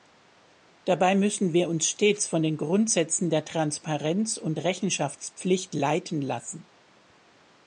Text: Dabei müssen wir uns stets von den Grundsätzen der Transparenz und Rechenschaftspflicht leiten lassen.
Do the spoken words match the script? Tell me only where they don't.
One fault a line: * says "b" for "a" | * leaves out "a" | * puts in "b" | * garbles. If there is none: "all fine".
all fine